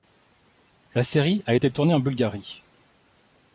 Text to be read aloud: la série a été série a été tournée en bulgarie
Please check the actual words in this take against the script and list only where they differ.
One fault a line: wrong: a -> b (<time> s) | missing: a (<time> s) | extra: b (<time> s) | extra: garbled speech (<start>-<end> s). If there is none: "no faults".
missing: série a été (1.7 s)